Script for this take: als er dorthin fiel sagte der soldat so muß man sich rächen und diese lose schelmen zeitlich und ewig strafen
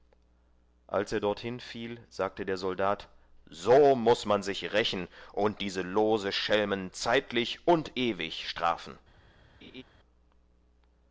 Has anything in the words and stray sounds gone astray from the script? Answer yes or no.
yes